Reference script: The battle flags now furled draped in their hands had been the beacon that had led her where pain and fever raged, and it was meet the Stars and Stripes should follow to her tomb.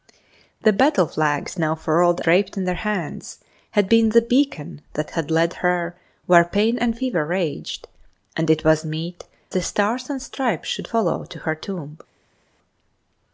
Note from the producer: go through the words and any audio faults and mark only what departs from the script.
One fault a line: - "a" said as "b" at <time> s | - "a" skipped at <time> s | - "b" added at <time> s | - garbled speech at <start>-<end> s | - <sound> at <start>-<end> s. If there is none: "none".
none